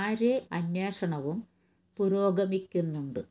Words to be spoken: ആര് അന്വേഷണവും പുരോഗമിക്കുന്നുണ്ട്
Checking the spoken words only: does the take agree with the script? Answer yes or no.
yes